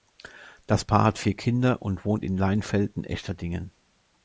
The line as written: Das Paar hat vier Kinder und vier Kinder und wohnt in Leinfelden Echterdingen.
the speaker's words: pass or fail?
fail